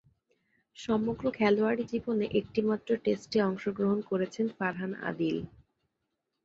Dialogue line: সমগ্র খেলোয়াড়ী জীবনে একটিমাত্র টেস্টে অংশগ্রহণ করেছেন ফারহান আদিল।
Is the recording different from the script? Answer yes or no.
no